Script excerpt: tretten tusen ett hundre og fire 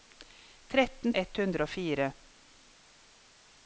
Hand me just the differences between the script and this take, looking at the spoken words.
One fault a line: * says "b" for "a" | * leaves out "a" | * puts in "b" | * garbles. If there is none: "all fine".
* leaves out "tusen"